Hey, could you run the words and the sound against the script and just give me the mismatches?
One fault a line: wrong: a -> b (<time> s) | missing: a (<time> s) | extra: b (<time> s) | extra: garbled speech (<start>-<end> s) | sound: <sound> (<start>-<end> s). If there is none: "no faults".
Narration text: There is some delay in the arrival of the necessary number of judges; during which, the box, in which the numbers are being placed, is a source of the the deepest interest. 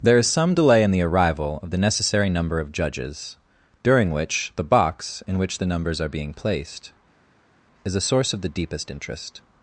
missing: the (8.5 s)